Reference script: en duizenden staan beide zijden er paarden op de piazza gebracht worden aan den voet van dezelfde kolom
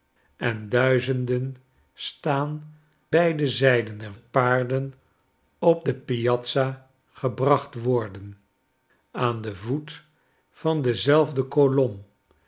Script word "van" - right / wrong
right